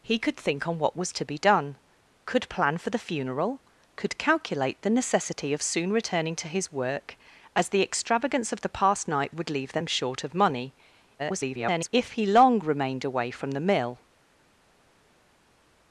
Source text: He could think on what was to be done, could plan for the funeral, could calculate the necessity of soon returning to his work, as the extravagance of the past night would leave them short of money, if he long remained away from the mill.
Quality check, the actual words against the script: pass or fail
fail